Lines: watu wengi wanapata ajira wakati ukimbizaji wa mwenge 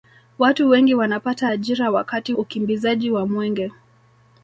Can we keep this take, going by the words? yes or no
yes